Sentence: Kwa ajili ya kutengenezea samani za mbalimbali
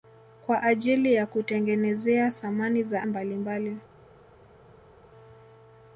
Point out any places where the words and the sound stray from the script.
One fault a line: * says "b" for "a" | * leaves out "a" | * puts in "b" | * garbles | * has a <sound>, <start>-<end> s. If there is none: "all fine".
all fine